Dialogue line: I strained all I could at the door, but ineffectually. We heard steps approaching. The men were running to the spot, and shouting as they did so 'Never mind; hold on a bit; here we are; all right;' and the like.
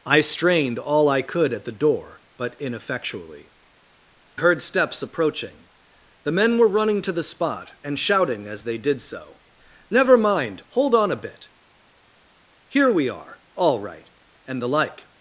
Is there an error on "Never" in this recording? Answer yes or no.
no